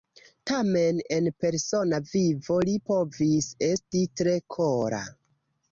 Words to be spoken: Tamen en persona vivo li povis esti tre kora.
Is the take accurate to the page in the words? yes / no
yes